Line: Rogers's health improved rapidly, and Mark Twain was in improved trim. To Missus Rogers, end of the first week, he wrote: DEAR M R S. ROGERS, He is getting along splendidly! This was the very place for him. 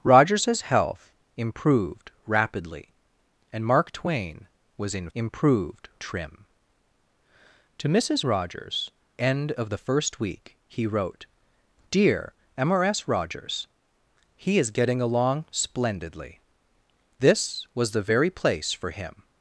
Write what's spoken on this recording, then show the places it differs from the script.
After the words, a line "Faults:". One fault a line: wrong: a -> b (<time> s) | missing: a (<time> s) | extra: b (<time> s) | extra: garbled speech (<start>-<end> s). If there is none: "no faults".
Rogers's health improved rapidly, and Mark Twain was in improved trim. To Missus Rogers, end of the first week, he wrote: DEAR M R S. ROGERS, He is getting along splendidly! This was the very place for him.
Faults:
no faults